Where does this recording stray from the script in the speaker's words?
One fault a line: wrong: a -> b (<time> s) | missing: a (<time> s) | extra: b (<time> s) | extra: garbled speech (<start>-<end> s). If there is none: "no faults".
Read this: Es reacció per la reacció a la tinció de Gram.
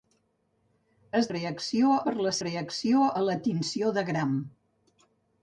no faults